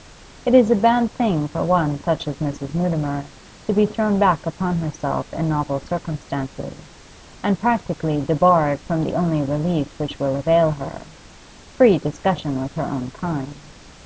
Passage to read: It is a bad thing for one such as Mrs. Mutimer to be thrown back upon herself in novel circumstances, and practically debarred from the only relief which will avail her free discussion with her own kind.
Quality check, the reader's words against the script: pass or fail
pass